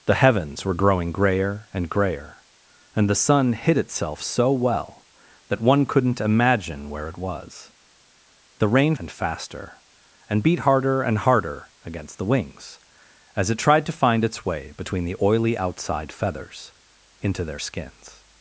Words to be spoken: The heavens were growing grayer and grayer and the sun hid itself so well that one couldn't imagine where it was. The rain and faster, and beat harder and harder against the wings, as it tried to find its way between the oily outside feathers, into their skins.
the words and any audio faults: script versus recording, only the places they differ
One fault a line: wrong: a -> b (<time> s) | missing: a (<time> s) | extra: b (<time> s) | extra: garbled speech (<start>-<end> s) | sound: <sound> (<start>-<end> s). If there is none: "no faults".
no faults